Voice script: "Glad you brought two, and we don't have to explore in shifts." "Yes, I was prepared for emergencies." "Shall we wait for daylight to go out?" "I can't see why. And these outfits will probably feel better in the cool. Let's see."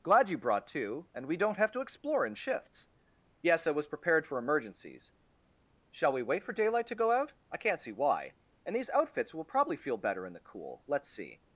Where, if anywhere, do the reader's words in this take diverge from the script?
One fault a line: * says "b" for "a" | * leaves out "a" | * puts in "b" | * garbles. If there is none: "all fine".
all fine